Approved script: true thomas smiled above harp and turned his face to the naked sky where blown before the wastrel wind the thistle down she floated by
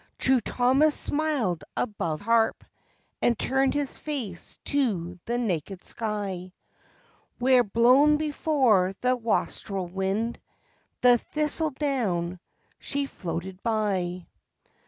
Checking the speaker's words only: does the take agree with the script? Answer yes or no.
yes